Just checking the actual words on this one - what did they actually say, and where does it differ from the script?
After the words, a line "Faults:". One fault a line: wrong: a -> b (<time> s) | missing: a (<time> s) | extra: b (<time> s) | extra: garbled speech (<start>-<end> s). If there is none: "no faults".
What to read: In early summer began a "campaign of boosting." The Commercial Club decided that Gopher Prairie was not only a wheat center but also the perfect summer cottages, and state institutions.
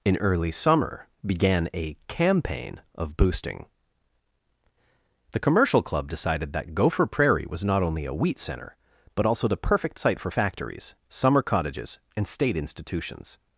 In early summer began a "campaign of boosting." The Commercial Club decided that Gopher Prairie was not only a wheat center but also the perfect site for factories, summer cottages, and state institutions.
Faults:
extra: site for factories (10.0 s)